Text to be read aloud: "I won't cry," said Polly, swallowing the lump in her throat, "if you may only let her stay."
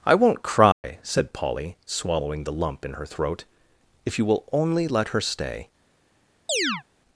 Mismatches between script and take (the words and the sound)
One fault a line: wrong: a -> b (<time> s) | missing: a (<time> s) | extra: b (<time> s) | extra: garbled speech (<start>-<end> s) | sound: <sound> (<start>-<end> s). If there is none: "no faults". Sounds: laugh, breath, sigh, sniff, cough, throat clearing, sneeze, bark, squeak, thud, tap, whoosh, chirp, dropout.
sound: dropout (0.7-0.8 s)
wrong: may -> will (4.2 s)
sound: chirp (6.5-6.8 s)